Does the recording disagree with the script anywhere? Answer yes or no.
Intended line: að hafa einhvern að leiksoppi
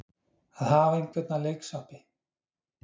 no